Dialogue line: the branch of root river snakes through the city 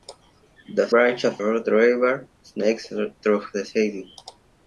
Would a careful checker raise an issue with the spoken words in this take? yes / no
no